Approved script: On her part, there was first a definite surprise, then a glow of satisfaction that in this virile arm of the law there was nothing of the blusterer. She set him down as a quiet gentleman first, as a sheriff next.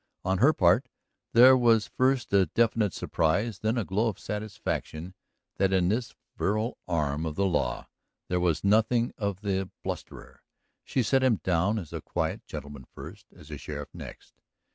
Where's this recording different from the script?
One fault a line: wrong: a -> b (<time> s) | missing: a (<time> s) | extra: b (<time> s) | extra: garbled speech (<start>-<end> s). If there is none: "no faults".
no faults